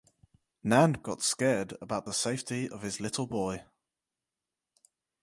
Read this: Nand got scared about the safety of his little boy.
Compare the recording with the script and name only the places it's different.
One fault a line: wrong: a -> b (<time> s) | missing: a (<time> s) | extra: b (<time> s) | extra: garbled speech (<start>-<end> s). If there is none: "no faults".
no faults